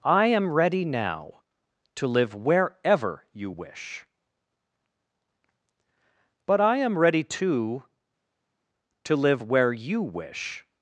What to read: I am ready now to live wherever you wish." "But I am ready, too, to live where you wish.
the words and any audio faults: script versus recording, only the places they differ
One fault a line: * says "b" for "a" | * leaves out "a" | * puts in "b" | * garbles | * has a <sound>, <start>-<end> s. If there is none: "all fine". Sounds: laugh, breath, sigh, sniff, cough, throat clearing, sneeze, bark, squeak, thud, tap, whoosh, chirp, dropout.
all fine